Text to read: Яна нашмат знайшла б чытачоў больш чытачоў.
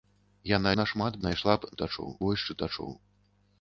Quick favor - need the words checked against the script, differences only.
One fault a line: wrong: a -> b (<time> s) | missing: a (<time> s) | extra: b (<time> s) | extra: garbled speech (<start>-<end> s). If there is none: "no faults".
no faults